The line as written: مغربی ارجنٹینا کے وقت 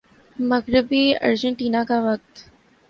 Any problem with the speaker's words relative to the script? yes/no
yes